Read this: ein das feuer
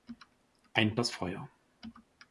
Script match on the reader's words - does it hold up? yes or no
yes